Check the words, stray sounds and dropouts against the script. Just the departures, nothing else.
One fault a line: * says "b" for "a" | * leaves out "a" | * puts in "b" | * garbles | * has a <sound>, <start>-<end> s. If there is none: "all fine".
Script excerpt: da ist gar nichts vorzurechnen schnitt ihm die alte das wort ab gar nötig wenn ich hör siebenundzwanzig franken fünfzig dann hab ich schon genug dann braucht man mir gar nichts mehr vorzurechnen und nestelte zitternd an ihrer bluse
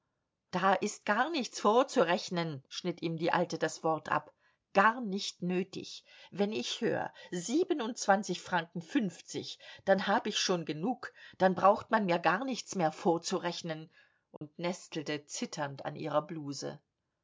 * puts in "nicht"
* has a dropout, 14.4-14.4 s